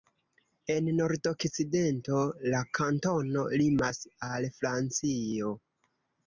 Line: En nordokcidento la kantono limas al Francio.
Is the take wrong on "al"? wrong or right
right